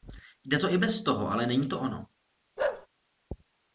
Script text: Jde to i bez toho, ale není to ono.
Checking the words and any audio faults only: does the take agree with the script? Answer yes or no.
no